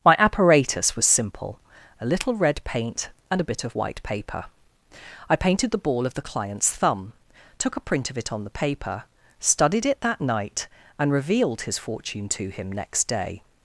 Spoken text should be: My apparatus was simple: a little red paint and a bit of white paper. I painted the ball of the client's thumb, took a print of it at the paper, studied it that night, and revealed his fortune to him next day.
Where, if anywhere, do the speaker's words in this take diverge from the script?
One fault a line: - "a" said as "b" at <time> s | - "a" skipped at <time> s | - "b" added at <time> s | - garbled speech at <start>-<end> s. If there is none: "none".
- "at" said as "on" at 8.3 s